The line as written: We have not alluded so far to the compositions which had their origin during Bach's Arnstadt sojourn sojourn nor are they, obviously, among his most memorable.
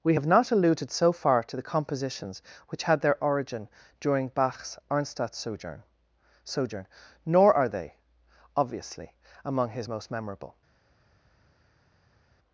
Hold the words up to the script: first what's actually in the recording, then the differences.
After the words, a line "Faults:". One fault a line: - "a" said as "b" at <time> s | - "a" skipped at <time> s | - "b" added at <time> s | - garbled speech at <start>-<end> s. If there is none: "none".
We have not alluded so far to the compositions which had their origin during Bach's Arnstadt sojourn sojourn nor are they, obviously, among his most memorable.
Faults:
none